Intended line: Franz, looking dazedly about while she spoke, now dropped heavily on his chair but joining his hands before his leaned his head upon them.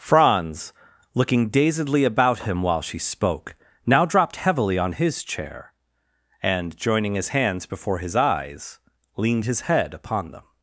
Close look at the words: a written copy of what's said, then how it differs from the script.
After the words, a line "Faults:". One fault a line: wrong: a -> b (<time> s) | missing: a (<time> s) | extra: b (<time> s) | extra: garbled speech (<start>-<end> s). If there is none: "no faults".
Franz, looking dazedly about him while she spoke, now dropped heavily on his chair and joining his hands before his eyes leaned his head upon them.
Faults:
extra: him (2.4 s)
wrong: but -> and (6.4 s)
extra: eyes (8.1 s)